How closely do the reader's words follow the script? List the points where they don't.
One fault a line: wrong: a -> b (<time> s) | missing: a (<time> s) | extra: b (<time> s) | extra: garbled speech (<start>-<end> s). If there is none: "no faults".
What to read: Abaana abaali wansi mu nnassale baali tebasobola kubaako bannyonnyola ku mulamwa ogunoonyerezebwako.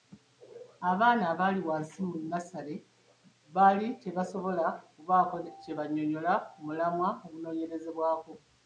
extra: kye (5.6 s)